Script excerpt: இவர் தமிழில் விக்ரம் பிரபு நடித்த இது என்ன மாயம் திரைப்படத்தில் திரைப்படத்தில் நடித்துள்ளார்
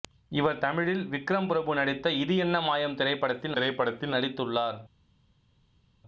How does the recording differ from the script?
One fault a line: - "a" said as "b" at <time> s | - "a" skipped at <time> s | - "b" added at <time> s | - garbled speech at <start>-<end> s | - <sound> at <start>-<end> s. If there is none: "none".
none